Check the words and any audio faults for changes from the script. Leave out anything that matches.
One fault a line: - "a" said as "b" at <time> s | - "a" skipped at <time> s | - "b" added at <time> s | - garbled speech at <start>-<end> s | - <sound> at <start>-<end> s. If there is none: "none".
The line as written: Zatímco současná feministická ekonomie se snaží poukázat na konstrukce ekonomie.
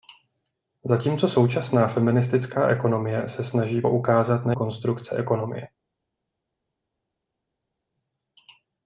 none